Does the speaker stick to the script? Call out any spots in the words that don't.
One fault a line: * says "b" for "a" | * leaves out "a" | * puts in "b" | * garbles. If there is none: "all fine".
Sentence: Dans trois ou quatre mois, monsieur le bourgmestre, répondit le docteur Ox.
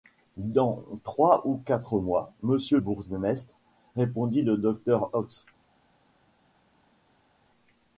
* leaves out "le"